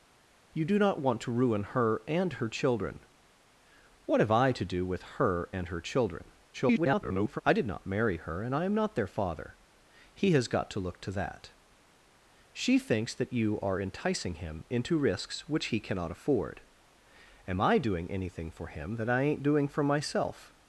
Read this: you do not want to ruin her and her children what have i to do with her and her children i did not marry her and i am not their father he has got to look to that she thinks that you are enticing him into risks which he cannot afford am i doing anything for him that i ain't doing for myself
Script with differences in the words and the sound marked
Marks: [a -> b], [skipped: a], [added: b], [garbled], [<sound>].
you do not want to ruin her and her children what have i to do with her and her children [garbled] i did not marry her and i am not their father he has got to look to that she thinks that you are enticing him into risks which he cannot afford am i doing anything for him that i ain't doing for myself